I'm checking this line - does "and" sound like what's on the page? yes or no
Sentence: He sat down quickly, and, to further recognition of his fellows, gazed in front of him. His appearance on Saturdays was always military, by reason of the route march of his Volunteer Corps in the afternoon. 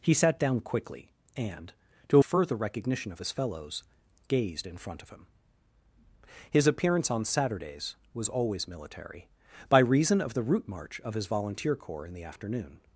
yes